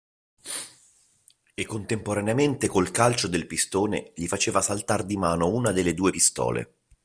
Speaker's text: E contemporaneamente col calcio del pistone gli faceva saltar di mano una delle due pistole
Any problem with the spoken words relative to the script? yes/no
no